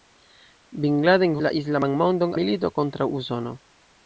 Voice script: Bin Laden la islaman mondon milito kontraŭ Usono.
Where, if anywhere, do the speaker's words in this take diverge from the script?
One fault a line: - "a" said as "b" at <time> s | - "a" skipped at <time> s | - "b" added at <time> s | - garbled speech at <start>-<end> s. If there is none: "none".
none